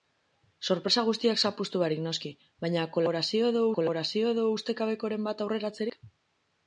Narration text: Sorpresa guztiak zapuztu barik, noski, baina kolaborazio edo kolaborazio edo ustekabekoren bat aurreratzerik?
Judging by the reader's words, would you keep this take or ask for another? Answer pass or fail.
pass